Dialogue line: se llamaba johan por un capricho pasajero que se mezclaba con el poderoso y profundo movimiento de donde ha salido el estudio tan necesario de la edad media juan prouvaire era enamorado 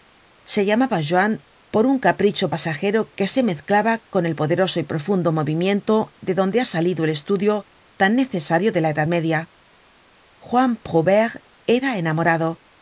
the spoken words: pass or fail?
pass